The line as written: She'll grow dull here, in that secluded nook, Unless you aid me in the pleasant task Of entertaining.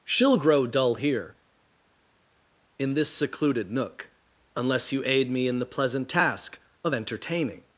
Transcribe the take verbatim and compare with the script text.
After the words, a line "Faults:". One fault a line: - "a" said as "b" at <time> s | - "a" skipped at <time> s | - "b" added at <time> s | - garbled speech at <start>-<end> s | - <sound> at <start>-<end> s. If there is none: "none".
She'll grow dull here, in this secluded nook, Unless you aid me in the pleasant task Of entertaining.
Faults:
- "that" said as "this" at 2.9 s